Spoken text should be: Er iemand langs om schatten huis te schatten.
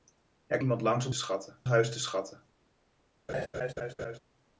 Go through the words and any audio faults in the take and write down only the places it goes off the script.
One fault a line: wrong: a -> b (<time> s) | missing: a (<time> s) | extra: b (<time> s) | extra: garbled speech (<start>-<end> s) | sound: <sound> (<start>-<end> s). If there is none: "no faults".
sound: laugh (3.3-4.2 s)